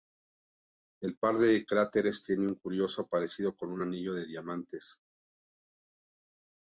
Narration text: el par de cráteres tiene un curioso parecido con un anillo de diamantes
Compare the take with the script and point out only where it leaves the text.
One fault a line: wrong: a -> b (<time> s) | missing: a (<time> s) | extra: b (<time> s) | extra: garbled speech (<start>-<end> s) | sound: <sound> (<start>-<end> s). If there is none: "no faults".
no faults